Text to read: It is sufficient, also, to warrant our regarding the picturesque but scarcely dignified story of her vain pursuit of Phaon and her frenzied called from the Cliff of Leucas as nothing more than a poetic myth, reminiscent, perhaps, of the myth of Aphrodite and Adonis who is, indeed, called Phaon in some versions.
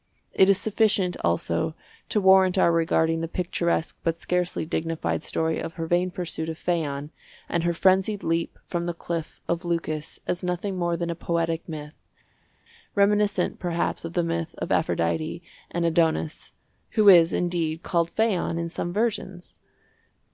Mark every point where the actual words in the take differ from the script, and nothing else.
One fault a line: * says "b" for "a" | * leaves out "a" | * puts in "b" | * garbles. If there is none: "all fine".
* says "leap" for "called"